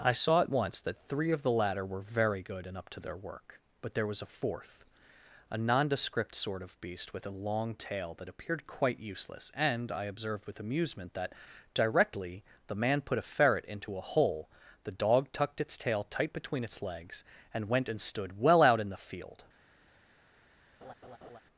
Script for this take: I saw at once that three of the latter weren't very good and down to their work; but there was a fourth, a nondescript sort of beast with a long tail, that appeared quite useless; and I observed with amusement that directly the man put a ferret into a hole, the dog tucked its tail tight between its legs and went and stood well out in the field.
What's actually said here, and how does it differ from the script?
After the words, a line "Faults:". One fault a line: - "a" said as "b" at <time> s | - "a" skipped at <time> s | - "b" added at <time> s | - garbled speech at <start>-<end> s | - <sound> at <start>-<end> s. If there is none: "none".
I saw at once that three of the latter were very good and up to their work; but there was a fourth, a nondescript sort of beast with a long tail, that appeared quite useless; and I observed with amusement that directly the man put a ferret into a hole, the dog tucked its tail tight between its legs and went and stood well out in the field.
Faults:
- "weren't" said as "were" at 1.9 s
- "down" said as "up" at 2.8 s
- laugh at 20.8-21.4 s